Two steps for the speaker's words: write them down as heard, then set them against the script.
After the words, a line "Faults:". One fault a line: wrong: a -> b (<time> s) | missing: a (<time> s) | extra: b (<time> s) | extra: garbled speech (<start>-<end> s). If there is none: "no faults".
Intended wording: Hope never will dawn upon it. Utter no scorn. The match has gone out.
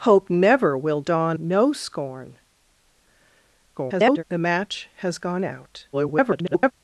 Hope never will dawn no scorn. [garbled] The match has gone out. [garbled]
Faults:
missing: upon it Utter (1.4 s)
extra: garbled speech (3.8-4.2 s)
extra: garbled speech (5.9-6.7 s)